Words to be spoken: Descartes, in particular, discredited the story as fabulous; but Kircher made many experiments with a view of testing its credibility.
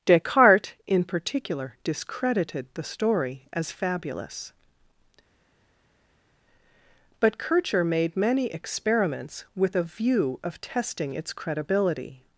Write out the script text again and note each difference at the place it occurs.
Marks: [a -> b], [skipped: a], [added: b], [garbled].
Descartes, in particular, discredited the story as fabulous; but Kircher made many experiments with a view of testing its credibility.